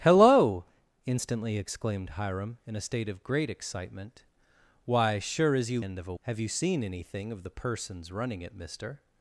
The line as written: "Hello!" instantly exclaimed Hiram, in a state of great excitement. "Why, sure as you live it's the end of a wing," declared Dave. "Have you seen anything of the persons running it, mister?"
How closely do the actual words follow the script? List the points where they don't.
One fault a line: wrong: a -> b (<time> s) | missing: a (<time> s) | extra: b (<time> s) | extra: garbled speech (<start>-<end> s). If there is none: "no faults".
missing: live it's the (5.8 s)
missing: wing declared Dave (6.1 s)